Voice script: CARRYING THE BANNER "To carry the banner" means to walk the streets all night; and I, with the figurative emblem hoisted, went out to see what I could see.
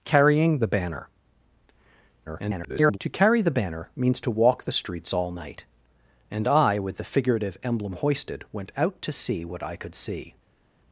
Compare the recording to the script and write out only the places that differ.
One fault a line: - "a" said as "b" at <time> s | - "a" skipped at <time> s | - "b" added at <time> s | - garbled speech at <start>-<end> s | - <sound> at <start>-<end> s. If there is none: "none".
- garbled speech at 2.3-3.0 s